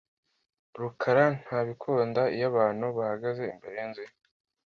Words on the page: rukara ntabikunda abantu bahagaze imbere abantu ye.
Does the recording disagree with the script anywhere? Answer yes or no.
yes